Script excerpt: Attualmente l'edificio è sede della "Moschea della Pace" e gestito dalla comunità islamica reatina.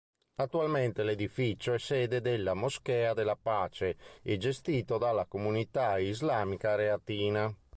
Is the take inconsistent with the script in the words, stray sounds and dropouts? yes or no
no